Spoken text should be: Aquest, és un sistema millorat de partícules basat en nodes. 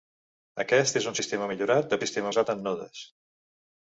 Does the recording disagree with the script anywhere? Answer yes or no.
yes